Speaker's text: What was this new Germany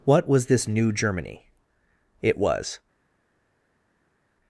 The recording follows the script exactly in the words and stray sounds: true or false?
false